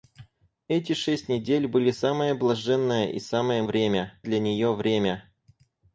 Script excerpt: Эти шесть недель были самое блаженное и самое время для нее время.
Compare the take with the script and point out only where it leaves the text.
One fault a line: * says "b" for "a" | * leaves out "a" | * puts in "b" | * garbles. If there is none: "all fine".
all fine